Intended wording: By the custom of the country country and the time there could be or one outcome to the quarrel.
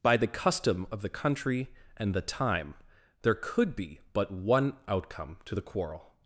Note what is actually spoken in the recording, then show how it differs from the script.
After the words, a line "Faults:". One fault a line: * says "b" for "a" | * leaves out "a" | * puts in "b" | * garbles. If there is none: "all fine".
By the custom of the country and the time there could be but one outcome to the quarrel.
Faults:
* leaves out "country"
* says "but" for "or"